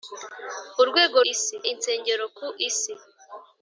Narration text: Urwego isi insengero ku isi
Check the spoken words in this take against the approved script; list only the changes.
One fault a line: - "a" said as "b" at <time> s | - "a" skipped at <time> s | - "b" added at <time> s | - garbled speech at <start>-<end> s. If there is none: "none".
none